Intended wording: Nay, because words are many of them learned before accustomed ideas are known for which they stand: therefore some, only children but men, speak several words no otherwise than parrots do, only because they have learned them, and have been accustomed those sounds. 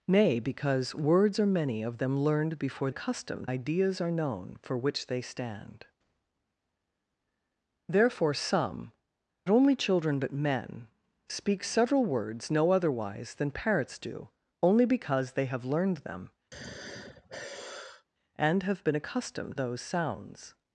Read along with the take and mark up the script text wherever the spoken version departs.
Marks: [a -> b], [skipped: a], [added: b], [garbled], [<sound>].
Nay, because words are many of them learned before accustomed ideas are known for which they stand: therefore some, only children but men, speak several words no otherwise than parrots do, only because they have learned them, [sigh] and have been accustomed those sounds.